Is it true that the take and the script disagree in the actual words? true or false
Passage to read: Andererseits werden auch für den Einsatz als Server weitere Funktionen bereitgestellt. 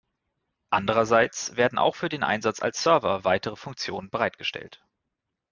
false